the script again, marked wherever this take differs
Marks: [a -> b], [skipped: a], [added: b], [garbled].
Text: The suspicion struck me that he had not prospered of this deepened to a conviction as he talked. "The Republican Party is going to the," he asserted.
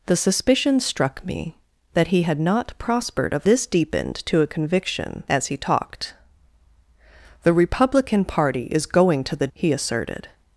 The suspicion struck me that he had not prospered of this deepened to a conviction as he talked. "The Republican Party is going to the," he asserted.